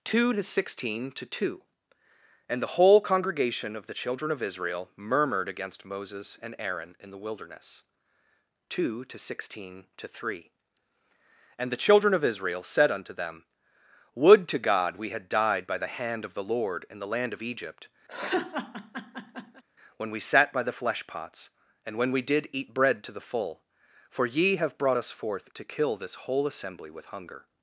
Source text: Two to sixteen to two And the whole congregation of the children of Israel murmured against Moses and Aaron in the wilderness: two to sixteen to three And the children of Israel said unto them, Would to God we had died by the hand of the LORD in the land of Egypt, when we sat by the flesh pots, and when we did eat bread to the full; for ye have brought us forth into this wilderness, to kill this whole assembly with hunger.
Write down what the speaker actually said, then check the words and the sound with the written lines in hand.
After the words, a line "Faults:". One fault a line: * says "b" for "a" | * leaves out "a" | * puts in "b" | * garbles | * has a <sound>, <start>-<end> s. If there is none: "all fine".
Two to sixteen to two And the whole congregation of the children of Israel murmured against Moses and Aaron in the wilderness: two to sixteen to three And the children of Israel said unto them, Would to God we had died by the hand of the LORD in the land of Egypt, when we sat by the flesh pots, and when we did eat bread to the full; for ye have brought us forth to kill this whole assembly with hunger.
Faults:
* has a laugh, 18.1-19.6 s
* leaves out "into this wilderness"